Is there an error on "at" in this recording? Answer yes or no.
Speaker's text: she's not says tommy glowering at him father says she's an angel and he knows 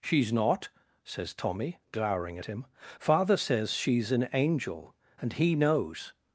yes